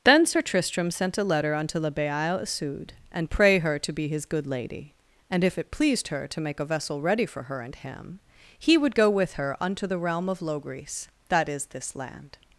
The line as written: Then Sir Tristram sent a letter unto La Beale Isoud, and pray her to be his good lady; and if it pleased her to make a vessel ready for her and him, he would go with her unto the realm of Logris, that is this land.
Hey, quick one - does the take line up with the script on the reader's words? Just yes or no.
yes